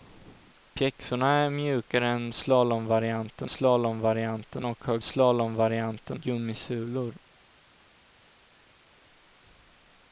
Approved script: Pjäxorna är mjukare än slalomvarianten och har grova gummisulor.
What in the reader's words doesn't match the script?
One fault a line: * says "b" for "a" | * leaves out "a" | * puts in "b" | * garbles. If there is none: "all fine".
* puts in "slalomvarianten"
* says "slalomvarianten" for "grova"